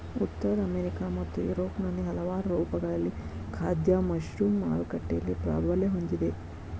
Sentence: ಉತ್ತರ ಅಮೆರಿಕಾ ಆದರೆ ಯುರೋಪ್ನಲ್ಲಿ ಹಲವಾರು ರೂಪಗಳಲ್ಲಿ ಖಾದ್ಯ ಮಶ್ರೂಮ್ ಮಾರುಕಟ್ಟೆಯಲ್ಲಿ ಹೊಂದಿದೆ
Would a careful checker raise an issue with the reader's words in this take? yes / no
yes